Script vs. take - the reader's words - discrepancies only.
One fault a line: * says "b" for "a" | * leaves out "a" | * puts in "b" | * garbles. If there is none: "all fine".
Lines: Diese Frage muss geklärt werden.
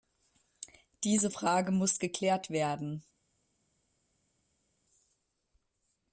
all fine